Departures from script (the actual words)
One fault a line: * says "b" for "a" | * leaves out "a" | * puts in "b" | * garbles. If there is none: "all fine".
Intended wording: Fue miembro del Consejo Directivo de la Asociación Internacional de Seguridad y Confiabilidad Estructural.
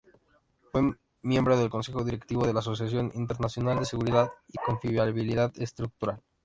all fine